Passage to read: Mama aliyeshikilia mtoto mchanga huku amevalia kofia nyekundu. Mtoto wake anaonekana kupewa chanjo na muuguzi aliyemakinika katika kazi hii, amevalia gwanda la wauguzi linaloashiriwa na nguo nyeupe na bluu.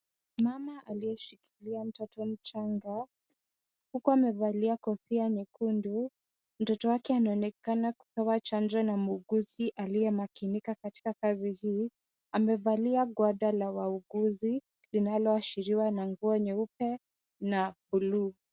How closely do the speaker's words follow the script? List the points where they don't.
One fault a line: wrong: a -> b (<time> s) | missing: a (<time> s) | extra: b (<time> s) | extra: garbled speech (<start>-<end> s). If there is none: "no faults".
no faults